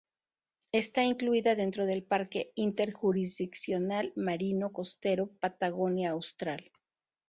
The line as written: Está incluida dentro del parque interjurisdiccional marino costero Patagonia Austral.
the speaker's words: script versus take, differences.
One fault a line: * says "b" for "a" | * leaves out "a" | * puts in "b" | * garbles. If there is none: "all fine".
all fine